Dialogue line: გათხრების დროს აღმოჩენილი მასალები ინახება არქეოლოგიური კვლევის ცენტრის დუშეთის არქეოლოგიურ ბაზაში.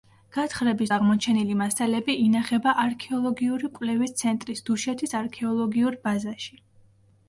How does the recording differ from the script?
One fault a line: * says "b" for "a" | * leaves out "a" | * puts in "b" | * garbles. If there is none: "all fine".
* leaves out "დროს"